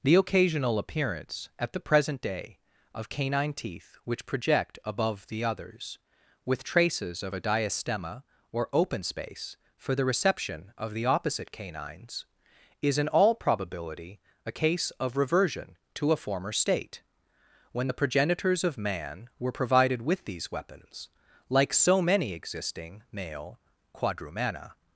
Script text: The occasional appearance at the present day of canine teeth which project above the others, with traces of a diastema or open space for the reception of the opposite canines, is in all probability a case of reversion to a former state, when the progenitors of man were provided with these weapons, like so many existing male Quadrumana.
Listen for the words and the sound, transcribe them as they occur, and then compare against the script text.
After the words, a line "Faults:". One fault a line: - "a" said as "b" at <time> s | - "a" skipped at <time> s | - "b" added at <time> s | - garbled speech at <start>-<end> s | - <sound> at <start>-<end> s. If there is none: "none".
The occasional appearance at the present day of canine teeth which project above the others, with traces of a diastema or open space for the reception of the opposite canines, is in all probability a case of reversion to a former state, when the progenitors of man were provided with these weapons, like so many existing male Quadrumana.
Faults:
none